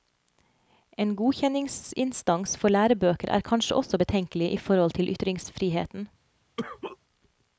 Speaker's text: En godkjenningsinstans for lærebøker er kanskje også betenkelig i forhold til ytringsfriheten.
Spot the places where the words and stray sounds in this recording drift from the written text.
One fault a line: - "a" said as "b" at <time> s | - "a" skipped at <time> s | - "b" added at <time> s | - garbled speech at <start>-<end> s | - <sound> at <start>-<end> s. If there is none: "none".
- cough at 6.6-7.0 s